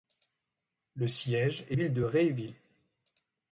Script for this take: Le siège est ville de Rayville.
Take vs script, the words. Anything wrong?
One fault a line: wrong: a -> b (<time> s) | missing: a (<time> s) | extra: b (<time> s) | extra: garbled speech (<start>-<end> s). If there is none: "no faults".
no faults